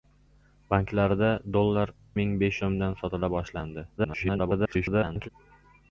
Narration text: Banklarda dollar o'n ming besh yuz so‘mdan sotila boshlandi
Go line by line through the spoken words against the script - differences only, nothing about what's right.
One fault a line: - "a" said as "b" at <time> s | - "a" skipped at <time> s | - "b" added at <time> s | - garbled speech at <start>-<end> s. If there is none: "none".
- "o'n" skipped at 1.9 s
- "yuz" skipped at 2.6 s
- garbled speech at 4.0-5.3 s